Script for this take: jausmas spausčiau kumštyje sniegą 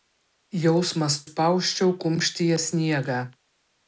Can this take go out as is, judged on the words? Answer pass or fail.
pass